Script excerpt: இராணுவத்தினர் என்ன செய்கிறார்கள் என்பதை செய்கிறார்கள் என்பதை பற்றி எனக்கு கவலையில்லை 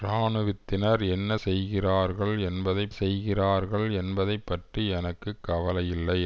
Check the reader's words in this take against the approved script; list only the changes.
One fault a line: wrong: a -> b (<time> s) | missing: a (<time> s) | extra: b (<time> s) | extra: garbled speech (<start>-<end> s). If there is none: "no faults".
no faults